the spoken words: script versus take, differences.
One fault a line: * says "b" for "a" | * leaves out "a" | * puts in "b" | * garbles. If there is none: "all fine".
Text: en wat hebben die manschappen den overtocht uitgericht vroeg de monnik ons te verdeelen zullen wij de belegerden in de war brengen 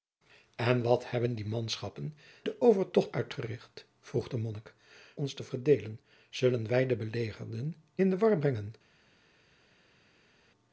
all fine